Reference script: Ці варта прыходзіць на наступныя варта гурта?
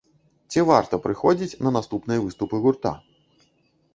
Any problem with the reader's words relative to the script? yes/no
yes